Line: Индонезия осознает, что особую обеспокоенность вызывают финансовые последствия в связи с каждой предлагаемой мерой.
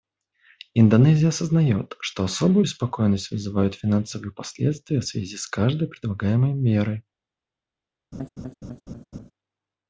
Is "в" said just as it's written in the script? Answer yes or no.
yes